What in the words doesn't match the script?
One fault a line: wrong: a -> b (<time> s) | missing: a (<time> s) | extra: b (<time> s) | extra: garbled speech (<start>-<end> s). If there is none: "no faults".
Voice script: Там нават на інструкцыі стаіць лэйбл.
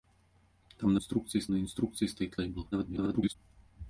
wrong: нават -> інструкцыі (1.0 s)
extra: garbled speech (2.7-3.4 s)